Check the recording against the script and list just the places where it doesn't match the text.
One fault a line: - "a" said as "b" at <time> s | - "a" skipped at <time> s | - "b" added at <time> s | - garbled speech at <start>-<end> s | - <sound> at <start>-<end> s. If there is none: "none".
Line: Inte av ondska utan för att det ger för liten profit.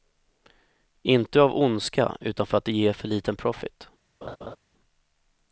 - laugh at 4.2-4.6 s